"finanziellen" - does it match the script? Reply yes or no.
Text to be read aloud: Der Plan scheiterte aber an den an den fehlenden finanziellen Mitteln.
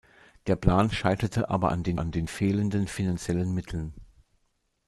yes